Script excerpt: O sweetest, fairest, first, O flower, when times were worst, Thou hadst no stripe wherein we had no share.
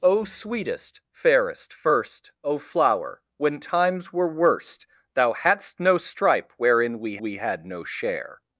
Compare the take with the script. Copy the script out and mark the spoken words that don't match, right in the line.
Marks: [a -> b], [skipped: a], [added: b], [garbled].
O sweetest, fairest, first, O flower, when times were worst, Thou hadst no stripe wherein we [added: we] had no share.